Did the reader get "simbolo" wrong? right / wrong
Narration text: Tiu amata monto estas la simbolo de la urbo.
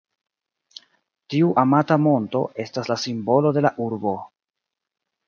right